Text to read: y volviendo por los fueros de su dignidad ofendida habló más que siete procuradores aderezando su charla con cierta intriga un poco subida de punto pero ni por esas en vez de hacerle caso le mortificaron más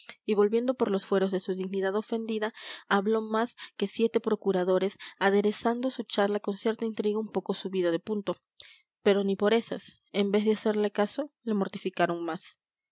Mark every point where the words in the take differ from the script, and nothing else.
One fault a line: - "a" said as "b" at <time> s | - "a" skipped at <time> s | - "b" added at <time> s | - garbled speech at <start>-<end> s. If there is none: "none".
none